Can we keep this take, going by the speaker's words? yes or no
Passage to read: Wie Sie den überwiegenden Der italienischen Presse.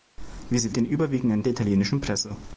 yes